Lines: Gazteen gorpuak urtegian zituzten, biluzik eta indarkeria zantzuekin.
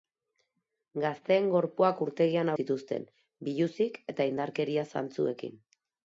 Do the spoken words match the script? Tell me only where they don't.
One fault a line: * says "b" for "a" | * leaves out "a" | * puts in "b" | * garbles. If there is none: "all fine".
all fine